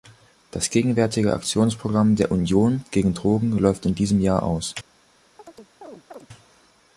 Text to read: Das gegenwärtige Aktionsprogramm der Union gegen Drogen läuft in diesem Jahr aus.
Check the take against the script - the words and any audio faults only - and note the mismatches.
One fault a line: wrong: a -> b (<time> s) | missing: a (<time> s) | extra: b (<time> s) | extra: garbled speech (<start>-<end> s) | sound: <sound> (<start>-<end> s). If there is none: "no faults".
sound: chirp (5.4-6.3 s)